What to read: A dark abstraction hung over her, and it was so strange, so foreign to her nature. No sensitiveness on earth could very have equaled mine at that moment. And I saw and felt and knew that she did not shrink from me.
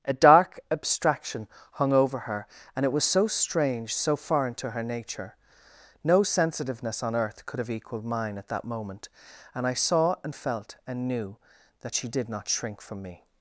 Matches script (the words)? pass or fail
fail